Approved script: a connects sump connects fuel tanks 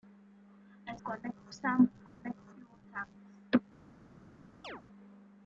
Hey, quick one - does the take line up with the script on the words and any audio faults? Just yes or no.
no